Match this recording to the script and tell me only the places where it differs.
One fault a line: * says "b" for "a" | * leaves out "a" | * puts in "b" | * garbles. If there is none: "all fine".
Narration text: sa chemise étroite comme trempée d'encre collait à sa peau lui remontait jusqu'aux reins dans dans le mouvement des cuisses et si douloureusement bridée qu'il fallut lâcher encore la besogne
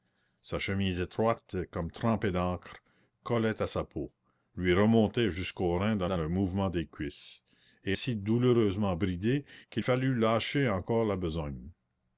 all fine